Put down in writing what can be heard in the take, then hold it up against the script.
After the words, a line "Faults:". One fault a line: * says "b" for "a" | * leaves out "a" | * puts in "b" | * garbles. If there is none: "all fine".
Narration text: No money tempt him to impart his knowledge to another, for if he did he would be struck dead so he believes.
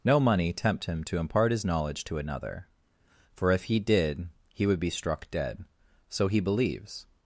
No money tempt him to impart his knowledge to another, for if he did he would be struck dead so he believes.
Faults:
all fine